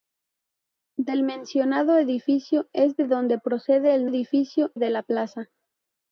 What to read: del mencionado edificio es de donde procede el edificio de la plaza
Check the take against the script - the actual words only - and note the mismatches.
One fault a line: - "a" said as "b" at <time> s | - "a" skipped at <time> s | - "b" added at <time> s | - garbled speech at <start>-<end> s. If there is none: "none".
none